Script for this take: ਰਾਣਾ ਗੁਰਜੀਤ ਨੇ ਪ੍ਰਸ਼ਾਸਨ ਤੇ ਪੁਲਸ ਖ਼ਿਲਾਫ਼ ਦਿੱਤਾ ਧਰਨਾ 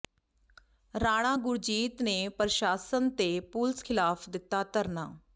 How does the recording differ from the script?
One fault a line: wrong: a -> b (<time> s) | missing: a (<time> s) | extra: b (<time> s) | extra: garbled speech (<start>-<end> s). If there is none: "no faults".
no faults